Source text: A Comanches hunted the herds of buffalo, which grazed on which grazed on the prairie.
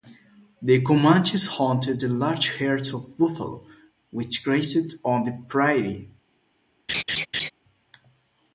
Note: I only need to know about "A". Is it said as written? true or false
false